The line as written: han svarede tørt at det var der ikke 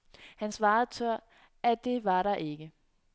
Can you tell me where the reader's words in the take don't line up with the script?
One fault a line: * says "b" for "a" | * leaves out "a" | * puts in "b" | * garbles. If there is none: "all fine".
all fine